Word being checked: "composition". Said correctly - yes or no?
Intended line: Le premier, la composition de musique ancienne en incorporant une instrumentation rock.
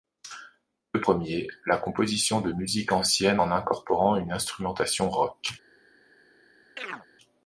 yes